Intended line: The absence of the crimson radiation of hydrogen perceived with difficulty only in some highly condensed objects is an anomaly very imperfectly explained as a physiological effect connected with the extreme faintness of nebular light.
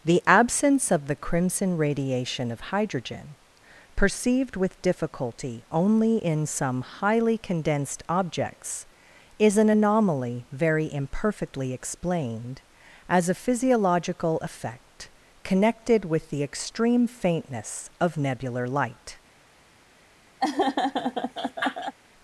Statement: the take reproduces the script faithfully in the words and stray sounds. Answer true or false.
false